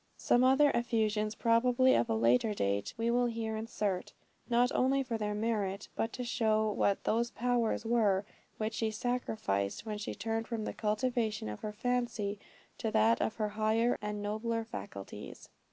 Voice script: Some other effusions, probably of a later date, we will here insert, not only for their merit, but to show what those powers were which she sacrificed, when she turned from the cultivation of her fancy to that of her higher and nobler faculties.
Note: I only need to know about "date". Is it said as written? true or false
true